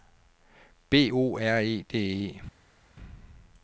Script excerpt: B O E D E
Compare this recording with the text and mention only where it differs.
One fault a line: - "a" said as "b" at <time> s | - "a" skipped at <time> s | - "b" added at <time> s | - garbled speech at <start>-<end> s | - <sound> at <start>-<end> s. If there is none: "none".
- "R" added at 1.4 s